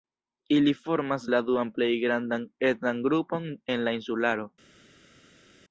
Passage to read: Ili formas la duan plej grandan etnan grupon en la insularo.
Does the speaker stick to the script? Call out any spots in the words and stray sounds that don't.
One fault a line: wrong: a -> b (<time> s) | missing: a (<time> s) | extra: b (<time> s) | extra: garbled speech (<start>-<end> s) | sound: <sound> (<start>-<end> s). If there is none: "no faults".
no faults